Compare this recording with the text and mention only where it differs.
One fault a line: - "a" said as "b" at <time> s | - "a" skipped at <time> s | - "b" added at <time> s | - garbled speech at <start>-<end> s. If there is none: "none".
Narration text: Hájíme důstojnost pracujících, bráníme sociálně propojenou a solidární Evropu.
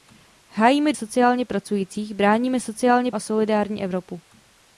- "důstojnost" said as "sociálně" at 0.9 s
- "propojenou" skipped at 3.1 s